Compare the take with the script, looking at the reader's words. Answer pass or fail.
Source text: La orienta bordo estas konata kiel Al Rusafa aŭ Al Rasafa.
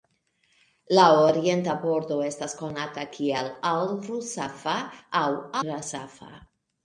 fail